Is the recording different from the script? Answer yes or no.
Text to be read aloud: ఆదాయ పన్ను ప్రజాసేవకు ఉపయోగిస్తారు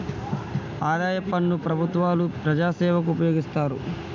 yes